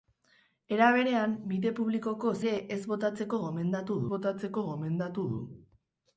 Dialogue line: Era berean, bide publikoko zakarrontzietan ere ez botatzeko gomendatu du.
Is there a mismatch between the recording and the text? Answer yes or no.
yes